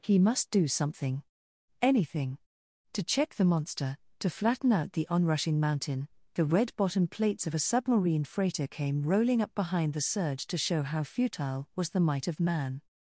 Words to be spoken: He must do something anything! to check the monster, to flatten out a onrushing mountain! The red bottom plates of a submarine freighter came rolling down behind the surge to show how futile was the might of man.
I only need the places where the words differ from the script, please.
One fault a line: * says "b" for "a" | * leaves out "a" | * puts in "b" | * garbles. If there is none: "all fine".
* says "the" for "a"
* says "up" for "down"